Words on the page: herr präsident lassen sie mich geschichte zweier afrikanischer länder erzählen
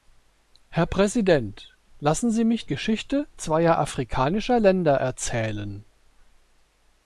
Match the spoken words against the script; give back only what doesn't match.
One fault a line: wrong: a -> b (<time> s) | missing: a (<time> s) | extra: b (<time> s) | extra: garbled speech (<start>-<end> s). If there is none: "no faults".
no faults